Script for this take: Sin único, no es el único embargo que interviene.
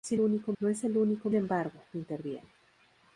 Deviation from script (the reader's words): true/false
false